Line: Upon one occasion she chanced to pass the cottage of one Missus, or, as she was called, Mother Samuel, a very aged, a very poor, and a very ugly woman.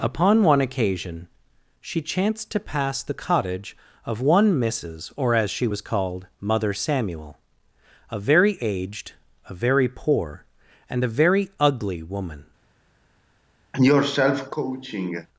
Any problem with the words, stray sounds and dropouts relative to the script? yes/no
yes